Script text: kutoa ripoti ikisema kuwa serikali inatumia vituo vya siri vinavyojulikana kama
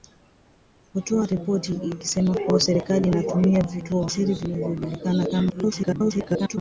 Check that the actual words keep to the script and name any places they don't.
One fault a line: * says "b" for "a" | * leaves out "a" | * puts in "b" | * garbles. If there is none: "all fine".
* leaves out "vya"
* garbles